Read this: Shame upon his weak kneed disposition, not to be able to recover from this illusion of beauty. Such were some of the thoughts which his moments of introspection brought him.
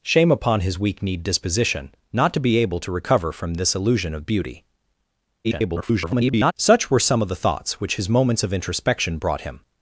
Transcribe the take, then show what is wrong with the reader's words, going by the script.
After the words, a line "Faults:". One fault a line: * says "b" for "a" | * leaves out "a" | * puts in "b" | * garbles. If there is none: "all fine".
Shame upon his weak kneed disposition, not to be able to recover from this illusion of beauty. [garbled] Such were some of the thoughts which his moments of introspection brought him.
Faults:
* garbles